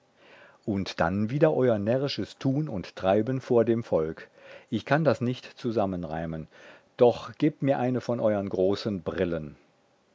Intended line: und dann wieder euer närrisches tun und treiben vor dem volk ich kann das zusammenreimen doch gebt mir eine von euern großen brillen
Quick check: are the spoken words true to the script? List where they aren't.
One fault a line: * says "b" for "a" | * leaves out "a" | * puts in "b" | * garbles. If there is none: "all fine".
* puts in "nicht"